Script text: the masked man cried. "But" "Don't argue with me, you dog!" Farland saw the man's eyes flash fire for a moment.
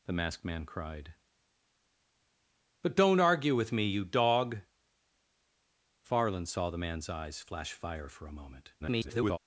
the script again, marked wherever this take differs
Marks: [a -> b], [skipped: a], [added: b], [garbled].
the masked man cried. "But" "Don't argue with me, you dog!" Farland saw the man's eyes flash fire for a moment. [garbled]